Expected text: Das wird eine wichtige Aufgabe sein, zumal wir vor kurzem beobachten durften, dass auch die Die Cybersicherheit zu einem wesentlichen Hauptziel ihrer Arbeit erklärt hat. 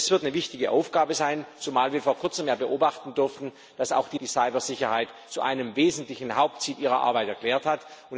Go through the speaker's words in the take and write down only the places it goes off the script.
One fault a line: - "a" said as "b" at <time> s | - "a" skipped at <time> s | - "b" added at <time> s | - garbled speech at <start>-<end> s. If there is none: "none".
none